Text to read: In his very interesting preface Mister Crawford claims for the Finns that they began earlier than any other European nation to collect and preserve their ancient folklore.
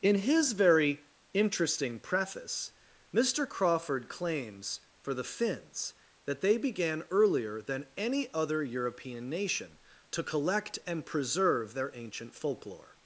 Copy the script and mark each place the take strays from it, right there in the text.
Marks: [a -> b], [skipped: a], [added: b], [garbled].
In his very interesting preface Mister Crawford claims for the Finns that they began earlier than any other European nation to collect and preserve their ancient folklore.